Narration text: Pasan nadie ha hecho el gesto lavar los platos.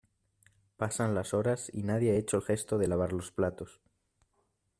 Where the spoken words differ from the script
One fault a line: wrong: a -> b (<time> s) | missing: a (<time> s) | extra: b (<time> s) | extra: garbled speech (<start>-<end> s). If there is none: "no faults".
extra: las horas y (1.1 s)
extra: de (2.8 s)